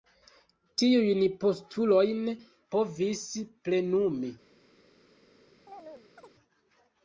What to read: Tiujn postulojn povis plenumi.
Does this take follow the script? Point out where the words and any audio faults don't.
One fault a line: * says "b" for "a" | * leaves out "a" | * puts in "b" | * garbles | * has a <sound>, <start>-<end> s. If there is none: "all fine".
* has a chirp, 5.7-6.3 s